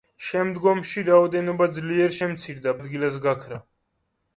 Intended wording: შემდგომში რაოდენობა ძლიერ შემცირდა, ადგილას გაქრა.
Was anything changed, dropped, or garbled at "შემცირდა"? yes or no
no